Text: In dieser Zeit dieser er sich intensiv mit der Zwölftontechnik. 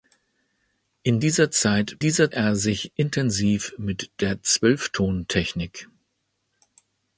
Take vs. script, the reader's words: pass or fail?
pass